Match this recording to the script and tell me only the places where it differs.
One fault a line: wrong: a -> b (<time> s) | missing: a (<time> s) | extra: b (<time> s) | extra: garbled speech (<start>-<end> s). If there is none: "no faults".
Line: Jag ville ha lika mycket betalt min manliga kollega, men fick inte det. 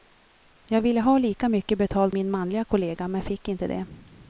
no faults